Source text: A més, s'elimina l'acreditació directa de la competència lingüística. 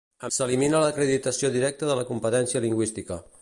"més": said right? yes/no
no